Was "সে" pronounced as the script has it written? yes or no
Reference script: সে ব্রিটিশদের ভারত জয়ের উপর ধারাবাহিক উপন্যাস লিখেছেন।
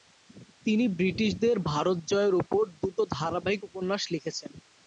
no